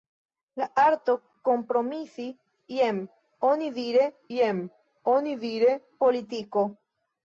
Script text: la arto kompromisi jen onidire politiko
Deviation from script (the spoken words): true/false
true